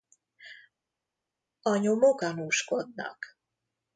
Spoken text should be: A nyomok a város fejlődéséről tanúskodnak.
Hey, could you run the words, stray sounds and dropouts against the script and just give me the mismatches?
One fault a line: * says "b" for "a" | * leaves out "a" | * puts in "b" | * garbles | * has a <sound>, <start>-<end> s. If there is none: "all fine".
* leaves out "a város fejlődéséről"